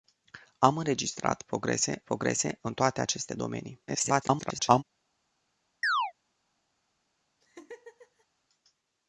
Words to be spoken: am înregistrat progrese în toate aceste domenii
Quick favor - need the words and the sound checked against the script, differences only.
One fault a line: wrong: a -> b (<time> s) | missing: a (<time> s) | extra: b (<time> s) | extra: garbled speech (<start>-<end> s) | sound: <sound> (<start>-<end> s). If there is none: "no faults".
extra: progrese (2.0 s)
extra: garbled speech (3.9-4.8 s)
sound: chirp (5.8-6.1 s)
sound: laugh (7.4-8.3 s)